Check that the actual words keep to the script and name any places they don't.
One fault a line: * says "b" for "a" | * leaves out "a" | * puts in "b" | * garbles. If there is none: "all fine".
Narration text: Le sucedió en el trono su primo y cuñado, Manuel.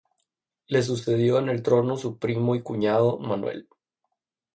all fine